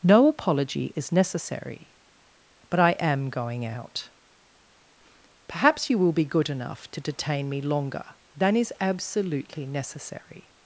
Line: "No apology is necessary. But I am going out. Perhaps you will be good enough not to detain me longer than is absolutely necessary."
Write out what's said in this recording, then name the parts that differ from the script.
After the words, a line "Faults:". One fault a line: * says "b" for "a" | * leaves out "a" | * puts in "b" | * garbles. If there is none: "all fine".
"No apology is necessary. But I am going out. Perhaps you will be good enough to detain me longer than is absolutely necessary."
Faults:
* leaves out "not"